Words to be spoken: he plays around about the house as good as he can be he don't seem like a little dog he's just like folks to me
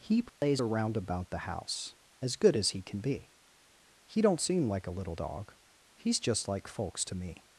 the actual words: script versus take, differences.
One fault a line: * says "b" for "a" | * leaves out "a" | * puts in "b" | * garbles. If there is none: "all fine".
all fine